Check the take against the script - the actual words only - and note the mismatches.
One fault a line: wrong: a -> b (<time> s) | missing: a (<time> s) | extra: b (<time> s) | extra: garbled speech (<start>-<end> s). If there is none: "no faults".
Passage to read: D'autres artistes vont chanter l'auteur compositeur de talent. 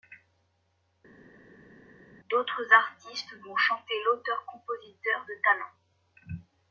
no faults